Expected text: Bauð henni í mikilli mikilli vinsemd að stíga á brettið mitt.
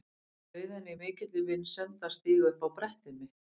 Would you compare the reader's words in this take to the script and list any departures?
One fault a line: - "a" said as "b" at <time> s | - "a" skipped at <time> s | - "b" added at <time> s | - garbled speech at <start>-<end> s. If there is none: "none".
- "mikilli" skipped at 1.4 s
- "upp" added at 2.6 s